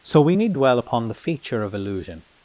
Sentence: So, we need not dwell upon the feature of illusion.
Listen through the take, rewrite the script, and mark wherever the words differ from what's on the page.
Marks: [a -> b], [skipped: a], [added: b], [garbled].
So, we need [skipped: not] dwell upon the feature of illusion.